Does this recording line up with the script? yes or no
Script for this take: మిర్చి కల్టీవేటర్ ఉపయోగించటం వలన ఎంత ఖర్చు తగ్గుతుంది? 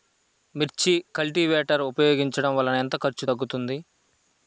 yes